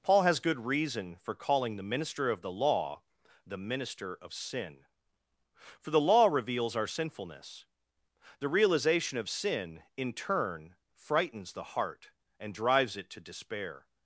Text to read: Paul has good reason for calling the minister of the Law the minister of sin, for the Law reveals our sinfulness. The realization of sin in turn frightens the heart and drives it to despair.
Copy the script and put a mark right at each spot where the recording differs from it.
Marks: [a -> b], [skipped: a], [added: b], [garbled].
Paul has good reason for calling the minister of the Law the minister of sin, for the Law reveals our sinfulness. The realization of sin in turn frightens the heart and drives it to despair.